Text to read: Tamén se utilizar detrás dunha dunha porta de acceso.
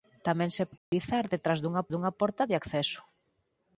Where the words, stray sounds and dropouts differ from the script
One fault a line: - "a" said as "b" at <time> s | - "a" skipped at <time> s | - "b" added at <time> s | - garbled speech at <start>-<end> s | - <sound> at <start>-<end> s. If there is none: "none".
- dropout at 0.8-0.9 s